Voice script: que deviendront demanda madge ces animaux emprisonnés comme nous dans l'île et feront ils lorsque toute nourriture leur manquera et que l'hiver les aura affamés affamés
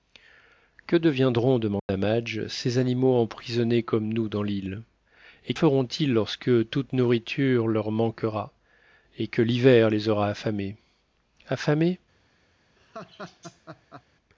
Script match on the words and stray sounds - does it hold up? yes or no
no